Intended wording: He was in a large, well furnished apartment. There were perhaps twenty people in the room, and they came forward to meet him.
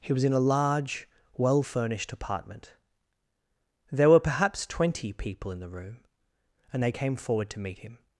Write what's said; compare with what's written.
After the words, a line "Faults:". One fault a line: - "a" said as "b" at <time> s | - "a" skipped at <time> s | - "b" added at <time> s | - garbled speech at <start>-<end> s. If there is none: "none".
He was in a large, well furnished apartment. There were perhaps twenty people in the room, and they came forward to meet him.
Faults:
none